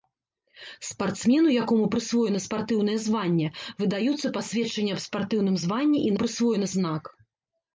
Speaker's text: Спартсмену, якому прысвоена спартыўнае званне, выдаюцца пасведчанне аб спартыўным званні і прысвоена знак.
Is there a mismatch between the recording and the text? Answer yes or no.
no